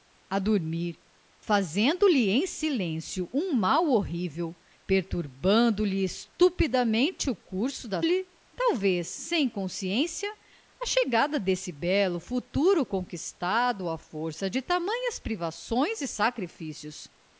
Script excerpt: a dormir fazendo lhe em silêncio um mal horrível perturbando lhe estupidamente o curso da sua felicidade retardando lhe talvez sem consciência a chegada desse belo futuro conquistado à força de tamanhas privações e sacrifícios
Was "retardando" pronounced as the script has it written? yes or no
no